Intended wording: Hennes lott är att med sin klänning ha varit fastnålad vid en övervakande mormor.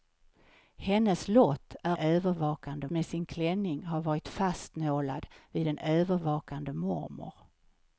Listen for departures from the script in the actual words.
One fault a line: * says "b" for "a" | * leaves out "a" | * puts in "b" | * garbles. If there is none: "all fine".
* says "övervakande" for "att"